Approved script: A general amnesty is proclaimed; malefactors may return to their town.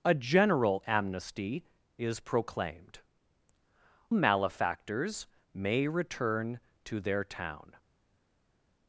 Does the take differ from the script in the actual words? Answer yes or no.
no